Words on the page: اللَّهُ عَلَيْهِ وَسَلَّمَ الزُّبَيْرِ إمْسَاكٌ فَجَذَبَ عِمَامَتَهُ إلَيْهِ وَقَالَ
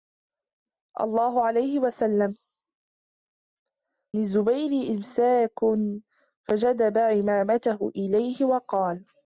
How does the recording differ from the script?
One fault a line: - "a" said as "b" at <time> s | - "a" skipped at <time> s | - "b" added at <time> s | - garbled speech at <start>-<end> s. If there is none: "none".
none